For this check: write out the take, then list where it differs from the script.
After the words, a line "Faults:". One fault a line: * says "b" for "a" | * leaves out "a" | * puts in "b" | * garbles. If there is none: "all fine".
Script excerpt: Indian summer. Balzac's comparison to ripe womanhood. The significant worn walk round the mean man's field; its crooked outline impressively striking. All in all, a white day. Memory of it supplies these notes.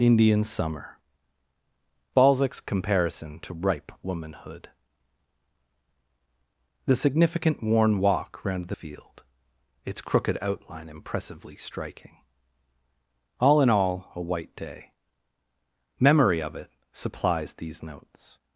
Indian summer. Balzac's comparison to ripe womanhood. The significant worn walk round the field; its crooked outline impressively striking. All in all, a white day. Memory of it supplies these notes.
Faults:
* leaves out "mean man's"